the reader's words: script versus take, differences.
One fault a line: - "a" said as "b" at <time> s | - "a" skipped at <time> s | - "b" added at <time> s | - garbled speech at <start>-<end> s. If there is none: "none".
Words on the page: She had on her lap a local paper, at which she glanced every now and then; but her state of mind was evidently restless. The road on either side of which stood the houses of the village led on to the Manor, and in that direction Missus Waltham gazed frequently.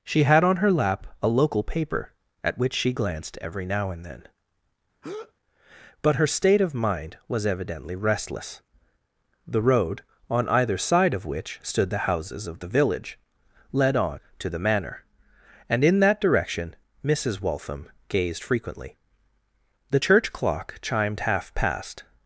- "The church clock chimed half past" added at 19.9 s